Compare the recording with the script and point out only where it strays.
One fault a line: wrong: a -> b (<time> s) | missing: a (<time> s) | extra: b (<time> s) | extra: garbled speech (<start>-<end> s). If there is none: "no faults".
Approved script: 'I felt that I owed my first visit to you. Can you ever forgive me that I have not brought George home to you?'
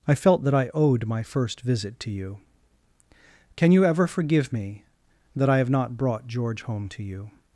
no faults